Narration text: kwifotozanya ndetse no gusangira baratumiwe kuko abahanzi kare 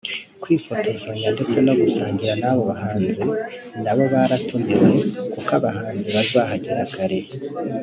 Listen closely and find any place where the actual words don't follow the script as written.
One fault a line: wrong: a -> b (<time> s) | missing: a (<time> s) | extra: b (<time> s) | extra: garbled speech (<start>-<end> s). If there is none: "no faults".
extra: n'abo bahanzi nabo (2.4 s)
extra: bazahagera (6.2 s)